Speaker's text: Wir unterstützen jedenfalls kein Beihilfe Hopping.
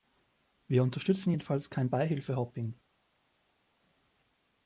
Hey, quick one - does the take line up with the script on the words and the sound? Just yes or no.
yes